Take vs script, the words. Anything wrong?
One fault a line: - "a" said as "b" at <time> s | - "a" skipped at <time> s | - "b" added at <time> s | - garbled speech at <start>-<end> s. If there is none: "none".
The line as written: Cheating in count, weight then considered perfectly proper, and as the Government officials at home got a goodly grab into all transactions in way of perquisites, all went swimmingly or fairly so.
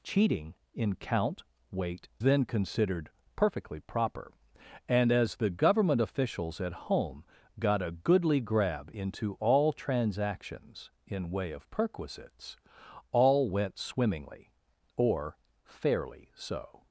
none